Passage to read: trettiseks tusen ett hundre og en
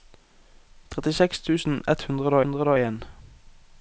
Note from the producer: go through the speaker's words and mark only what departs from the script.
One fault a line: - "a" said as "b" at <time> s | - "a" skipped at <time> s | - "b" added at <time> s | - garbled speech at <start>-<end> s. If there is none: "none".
- "hundre" added at 2.4 s